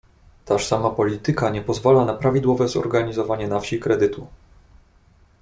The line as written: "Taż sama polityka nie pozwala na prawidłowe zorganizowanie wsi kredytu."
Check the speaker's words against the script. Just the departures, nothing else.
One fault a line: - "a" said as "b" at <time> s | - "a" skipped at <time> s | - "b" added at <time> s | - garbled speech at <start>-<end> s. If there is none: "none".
- "na" added at 3.5 s